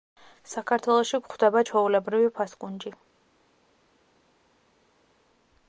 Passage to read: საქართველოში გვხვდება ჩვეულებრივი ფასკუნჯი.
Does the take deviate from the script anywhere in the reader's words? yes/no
no